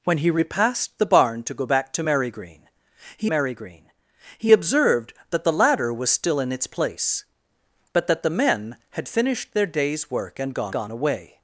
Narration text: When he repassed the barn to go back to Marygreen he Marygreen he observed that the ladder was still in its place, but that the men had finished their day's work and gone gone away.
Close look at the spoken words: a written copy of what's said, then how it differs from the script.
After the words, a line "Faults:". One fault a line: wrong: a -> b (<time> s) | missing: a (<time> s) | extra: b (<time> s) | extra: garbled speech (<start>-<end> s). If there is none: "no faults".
When he repassed the barn to go back to Marygreen he Marygreen he observed that the ladder was still in its place, but that the men had finished their day's work and gone gone away.
Faults:
no faults